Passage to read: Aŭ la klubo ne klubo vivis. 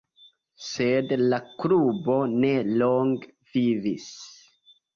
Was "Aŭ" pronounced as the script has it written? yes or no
no